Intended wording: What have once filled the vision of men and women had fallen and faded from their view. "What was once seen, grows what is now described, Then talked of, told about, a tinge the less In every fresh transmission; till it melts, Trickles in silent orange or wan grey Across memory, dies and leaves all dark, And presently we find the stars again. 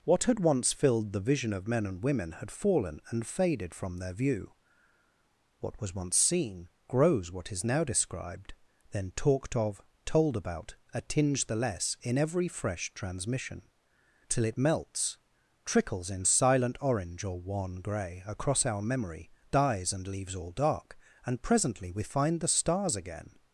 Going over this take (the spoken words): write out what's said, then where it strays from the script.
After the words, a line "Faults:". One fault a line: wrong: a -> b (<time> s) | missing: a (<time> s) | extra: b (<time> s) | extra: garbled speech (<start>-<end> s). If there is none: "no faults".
What had once filled the vision of men and women had fallen and faded from their view. "What was once seen, grows what is now described, Then talked of, told about, a tinge the less In every fresh transmission; till it melts, Trickles in silent orange or wan grey Across our memory, dies and leaves all dark, And presently we find the stars again.
Faults:
wrong: have -> had (0.2 s)
extra: our (18.7 s)